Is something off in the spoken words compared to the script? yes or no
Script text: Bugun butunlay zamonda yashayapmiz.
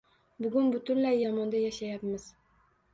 no